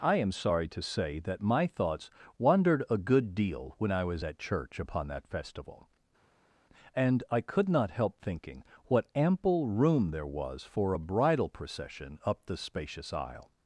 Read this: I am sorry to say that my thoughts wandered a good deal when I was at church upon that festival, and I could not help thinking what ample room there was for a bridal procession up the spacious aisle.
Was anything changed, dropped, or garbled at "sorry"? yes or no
no